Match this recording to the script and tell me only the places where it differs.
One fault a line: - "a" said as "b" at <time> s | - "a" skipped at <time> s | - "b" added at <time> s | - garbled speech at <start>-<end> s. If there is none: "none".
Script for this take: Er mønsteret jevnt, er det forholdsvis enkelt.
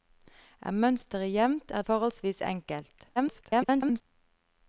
- "det" skipped at 1.8 s
- garbled speech at 3.2-4.0 s